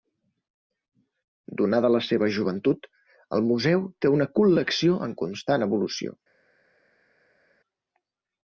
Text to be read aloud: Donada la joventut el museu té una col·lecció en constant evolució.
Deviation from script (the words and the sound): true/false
true